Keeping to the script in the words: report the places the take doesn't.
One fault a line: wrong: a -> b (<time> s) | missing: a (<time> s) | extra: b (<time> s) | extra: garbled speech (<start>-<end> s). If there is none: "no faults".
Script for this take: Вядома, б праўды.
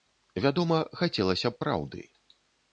extra: хацелася (1.0 s)